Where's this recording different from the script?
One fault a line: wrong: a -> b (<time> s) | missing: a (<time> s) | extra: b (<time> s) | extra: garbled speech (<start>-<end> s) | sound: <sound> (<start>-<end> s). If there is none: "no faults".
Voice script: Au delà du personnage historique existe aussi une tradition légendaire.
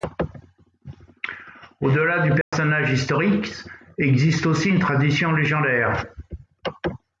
sound: dropout (2.4-2.5 s)